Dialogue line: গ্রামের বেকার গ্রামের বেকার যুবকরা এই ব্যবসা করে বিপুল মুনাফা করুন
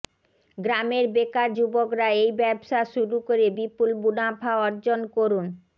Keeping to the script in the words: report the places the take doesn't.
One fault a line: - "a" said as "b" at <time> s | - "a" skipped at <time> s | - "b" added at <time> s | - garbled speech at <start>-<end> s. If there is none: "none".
- "গ্রামের বেকার" skipped at 1.5 s
- "শুরু" added at 2.9 s
- "অর্জন" added at 4.7 s